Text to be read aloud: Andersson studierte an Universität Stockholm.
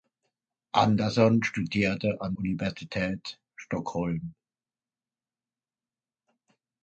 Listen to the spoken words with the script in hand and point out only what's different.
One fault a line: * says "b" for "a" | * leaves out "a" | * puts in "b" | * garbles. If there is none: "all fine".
all fine